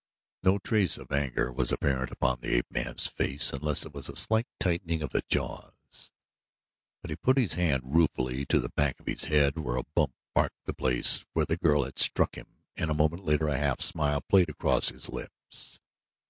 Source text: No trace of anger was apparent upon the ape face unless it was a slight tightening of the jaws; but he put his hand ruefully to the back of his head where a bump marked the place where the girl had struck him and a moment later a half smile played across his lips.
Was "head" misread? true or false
false